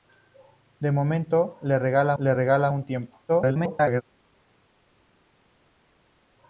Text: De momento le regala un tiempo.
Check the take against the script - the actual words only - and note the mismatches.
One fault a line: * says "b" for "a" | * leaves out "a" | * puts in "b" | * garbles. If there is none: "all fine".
* puts in "le regala"
* garbles